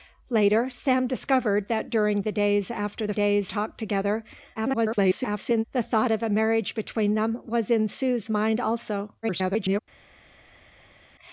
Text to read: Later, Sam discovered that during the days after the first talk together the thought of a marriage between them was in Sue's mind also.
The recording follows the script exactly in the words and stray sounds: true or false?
false